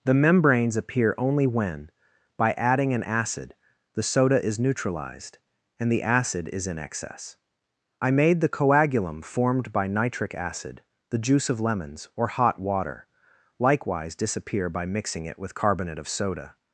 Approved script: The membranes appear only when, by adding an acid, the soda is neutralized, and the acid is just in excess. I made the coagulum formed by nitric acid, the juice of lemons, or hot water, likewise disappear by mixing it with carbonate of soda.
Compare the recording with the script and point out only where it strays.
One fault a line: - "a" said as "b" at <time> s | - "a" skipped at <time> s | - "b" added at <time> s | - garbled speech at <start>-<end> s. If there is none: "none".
- "just" skipped at 6.7 s